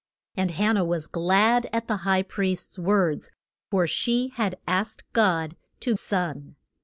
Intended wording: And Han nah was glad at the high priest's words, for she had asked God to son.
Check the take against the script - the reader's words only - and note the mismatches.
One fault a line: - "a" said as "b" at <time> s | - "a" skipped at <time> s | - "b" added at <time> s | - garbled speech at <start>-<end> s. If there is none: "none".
none